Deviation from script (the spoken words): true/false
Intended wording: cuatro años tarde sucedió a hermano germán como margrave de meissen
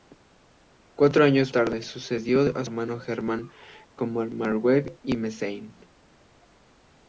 false